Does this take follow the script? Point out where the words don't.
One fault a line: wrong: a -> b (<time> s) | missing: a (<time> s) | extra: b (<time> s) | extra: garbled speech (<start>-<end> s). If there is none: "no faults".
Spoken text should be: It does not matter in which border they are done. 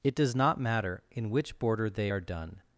no faults